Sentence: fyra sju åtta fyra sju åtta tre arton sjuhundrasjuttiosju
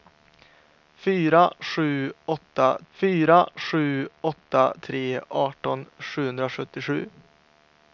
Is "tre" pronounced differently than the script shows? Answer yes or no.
no